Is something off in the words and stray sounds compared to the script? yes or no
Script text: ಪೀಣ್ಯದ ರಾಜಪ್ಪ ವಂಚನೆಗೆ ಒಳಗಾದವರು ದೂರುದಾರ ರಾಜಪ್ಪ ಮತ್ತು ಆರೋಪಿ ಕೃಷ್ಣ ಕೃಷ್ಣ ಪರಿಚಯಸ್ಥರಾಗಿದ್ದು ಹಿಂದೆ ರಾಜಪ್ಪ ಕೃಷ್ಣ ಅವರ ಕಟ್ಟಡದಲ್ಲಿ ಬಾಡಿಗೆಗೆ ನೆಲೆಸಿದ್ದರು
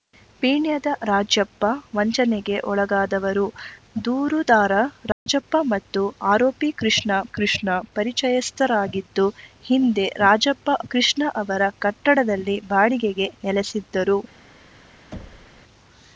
yes